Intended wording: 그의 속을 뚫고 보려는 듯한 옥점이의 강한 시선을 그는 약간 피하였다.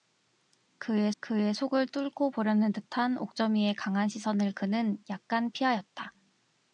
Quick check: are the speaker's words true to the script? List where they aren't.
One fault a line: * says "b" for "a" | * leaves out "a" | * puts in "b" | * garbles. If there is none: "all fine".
* puts in "그의"